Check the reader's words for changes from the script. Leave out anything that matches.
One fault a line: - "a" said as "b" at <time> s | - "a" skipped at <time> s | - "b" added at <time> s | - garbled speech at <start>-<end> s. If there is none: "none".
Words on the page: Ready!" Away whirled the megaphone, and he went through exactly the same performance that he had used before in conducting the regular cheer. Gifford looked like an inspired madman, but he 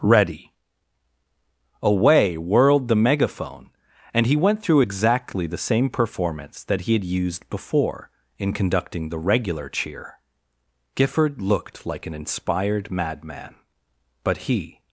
none